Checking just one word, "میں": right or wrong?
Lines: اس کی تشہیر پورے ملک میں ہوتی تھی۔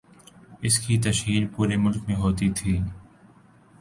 right